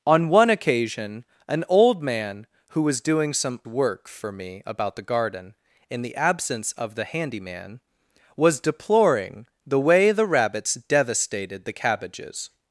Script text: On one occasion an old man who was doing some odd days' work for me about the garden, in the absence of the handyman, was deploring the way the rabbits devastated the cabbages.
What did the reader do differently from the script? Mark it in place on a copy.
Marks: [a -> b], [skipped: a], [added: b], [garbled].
On one occasion an old man who was doing some [skipped: odd days'] work for me about the garden, in the absence of the handyman, was deploring the way the rabbits devastated the cabbages.